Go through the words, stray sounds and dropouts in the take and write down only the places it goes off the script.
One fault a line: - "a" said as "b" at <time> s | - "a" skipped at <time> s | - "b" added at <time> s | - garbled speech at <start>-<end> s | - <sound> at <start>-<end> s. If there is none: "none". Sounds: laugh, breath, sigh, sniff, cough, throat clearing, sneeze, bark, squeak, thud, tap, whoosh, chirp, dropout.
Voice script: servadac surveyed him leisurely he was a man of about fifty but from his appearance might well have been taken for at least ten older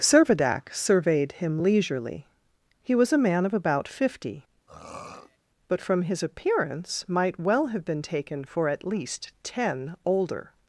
- throat clearing at 4.7-5.4 s